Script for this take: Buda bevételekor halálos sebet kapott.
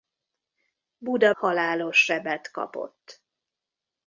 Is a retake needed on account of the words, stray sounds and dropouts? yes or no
yes